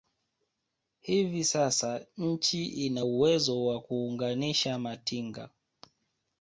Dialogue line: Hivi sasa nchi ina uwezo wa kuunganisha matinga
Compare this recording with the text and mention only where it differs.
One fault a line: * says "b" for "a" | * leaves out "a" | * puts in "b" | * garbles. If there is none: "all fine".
all fine